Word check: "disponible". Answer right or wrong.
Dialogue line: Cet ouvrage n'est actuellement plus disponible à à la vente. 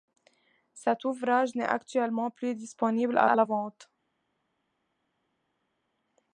right